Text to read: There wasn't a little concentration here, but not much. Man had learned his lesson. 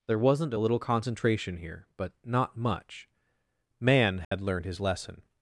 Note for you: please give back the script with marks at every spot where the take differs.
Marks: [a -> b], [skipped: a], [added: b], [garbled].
There wasn't a little concentration here, but not much. Man had learned his lesson.